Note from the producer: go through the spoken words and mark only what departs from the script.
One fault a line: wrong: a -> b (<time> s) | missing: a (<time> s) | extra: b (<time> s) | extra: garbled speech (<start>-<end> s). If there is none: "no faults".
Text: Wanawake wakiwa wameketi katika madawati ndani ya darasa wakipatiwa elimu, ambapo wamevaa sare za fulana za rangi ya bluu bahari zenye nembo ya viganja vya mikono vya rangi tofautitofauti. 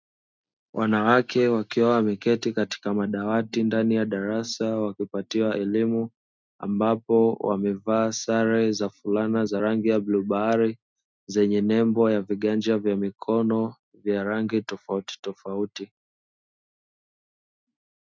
no faults